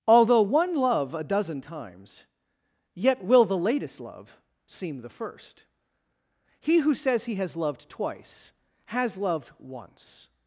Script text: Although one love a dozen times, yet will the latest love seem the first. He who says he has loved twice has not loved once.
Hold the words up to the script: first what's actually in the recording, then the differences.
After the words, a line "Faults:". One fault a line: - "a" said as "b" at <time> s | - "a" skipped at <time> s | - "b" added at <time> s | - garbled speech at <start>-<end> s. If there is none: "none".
Although one love a dozen times, yet will the latest love seem the first. He who says he has loved twice has loved once.
Faults:
- "not" skipped at 9.2 s